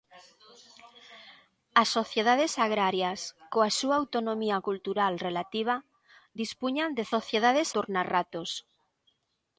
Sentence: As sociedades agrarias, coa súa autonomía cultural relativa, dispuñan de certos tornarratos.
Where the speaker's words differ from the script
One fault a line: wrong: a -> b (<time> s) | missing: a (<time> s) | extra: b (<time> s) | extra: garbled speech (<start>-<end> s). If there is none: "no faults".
wrong: certos -> sociedades (7.1 s)